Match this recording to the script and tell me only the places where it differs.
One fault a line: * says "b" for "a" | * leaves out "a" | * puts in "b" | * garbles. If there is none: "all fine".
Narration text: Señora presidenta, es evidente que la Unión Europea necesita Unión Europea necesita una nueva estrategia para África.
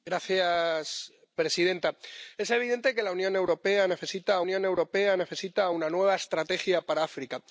all fine